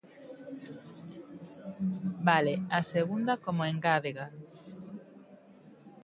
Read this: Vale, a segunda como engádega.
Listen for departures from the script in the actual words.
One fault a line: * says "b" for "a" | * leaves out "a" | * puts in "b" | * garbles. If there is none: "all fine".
all fine